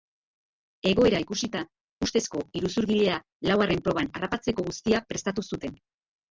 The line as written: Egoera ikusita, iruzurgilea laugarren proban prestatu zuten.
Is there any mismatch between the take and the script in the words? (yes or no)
yes